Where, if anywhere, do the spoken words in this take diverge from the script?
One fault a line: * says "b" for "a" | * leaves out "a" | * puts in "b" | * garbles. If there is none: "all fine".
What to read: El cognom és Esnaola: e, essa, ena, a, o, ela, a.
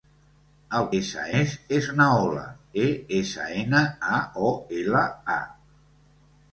* says "essa" for "cognom"